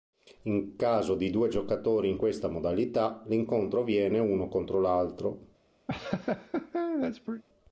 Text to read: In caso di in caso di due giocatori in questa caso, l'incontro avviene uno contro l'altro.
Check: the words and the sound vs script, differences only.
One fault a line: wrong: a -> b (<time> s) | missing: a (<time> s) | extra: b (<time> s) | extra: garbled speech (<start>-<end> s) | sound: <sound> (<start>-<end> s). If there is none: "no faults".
missing: in caso di (1.3 s)
wrong: caso -> modalità (2.5 s)
sound: laugh (5.9-7.4 s)